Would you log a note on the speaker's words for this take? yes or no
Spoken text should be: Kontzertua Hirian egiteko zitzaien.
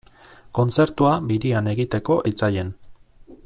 no